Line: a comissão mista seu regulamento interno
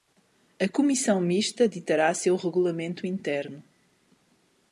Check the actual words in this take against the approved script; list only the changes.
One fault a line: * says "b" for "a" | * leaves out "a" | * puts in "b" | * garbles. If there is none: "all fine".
* puts in "ditará"